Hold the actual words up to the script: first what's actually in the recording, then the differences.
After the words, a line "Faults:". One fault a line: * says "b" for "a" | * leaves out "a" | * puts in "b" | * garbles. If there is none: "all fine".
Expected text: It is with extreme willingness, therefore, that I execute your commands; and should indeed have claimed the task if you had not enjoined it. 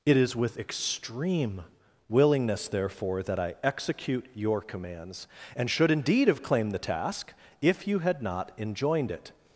It is with extreme willingness, therefore, that I execute your commands; and should indeed have claimed the task if you had not enjoined it.
Faults:
all fine